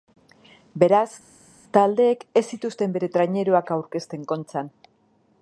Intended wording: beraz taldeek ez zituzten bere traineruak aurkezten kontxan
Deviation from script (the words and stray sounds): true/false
false